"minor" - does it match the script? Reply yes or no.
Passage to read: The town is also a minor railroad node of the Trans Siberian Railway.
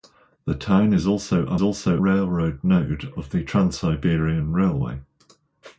no